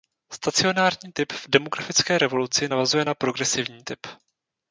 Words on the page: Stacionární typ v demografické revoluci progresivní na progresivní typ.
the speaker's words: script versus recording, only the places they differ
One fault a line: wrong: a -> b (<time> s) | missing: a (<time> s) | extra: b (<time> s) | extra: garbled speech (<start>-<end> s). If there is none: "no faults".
wrong: progresivní -> navazuje (2.7 s)